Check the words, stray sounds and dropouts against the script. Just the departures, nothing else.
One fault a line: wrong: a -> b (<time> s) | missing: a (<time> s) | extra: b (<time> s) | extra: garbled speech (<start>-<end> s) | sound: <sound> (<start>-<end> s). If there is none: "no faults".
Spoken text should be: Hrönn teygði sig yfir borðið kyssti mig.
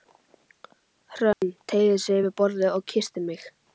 sound: dropout (1.3-1.4 s)
extra: og (2.7 s)